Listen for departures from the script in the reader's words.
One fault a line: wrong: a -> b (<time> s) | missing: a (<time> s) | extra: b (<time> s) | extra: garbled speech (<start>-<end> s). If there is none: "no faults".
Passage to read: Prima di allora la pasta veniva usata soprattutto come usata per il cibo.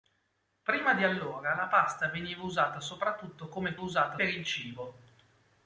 no faults